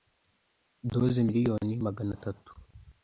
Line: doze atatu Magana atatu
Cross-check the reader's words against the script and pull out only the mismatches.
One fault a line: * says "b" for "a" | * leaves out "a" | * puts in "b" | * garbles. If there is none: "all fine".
* says "miliyoni" for "atatu"